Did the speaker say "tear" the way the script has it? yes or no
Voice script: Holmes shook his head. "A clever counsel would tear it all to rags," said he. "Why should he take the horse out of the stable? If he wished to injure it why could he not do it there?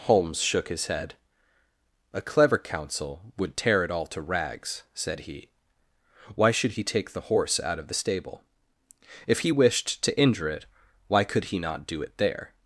yes